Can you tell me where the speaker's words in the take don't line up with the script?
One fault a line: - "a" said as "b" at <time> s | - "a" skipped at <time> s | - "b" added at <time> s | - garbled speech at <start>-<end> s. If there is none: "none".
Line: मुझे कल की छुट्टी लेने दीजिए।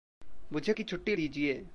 - "कल" skipped at 0.7 s
- "लेने" skipped at 1.1 s